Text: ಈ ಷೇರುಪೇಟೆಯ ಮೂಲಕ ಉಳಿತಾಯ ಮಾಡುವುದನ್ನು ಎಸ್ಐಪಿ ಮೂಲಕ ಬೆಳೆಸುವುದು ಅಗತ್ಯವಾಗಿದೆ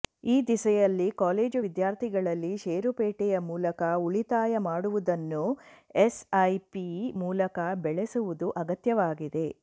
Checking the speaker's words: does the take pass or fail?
fail